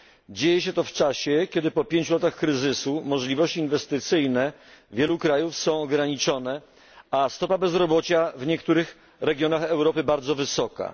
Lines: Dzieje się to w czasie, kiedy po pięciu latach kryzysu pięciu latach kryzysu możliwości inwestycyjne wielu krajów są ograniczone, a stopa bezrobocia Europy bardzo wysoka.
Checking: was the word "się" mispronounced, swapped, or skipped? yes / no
no